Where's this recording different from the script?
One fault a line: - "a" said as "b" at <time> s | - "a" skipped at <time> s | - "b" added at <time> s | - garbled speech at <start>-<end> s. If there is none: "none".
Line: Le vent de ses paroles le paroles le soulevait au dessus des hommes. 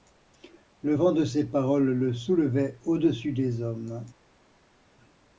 - "paroles le" skipped at 2.1 s